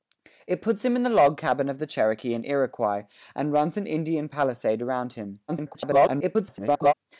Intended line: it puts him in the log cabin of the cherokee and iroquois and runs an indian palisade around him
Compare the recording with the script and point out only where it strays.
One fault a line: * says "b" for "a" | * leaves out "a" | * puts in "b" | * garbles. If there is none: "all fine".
* garbles